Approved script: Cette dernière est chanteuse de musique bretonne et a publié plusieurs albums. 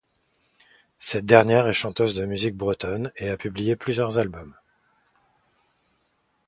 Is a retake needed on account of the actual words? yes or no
no